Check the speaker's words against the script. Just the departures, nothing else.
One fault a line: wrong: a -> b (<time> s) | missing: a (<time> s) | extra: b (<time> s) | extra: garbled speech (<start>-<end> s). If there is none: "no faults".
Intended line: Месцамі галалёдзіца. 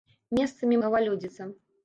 no faults